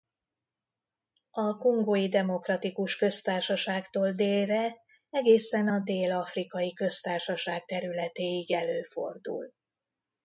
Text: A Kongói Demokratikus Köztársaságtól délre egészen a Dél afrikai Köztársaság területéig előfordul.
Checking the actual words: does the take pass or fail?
pass